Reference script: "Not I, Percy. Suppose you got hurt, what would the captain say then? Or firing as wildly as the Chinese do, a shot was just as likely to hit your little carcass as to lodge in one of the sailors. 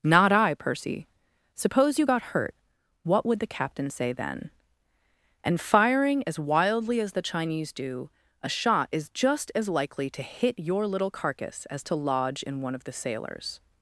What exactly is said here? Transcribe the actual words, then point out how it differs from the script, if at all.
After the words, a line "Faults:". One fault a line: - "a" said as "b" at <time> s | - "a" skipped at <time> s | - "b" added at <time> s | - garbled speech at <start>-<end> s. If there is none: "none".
"Not I, Percy. Suppose you got hurt, what would the captain say then? And firing as wildly as the Chinese do, a shot is just as likely to hit your little carcass as to lodge in one of the sailors.
Faults:
- "Or" said as "And" at 5.4 s
- "was" said as "is" at 8.9 s